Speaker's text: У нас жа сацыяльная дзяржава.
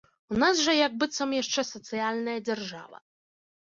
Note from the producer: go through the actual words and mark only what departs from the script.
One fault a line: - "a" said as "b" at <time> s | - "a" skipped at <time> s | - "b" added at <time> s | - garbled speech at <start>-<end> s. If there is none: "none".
- "як быццам яшчэ" added at 0.8 s